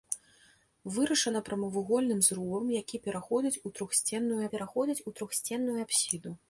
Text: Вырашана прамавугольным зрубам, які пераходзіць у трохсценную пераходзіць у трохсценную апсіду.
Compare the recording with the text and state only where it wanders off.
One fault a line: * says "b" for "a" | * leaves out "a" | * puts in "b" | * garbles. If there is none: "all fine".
all fine